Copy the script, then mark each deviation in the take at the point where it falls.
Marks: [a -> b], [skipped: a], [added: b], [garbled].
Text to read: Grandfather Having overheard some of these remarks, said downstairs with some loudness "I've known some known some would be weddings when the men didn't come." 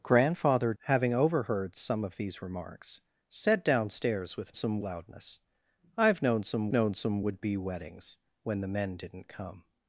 Grandfather Having overheard some of these remarks, said downstairs with some loudness "I've known some known some would be weddings when the men didn't come."